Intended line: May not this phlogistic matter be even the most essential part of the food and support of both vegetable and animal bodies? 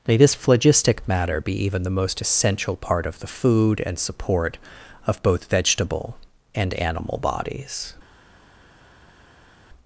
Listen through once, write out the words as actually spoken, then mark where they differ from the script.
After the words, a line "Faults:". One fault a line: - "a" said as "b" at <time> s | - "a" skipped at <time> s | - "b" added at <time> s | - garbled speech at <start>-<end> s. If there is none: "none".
May this phlogistic matter be even the most essential part of the food and support of both vegetable and animal bodies?
Faults:
- "not" skipped at 0.2 s